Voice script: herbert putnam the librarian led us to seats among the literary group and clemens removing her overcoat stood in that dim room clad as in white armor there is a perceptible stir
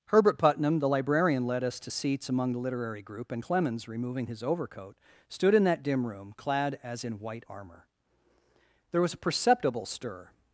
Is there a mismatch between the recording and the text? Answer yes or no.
yes